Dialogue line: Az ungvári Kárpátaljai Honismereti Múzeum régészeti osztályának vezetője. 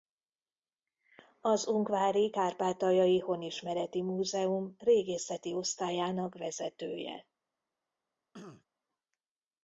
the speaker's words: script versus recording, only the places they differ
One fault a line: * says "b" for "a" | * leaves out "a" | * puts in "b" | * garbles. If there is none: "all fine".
all fine